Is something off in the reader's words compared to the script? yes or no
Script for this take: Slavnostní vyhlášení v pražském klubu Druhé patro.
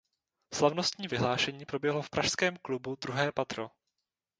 yes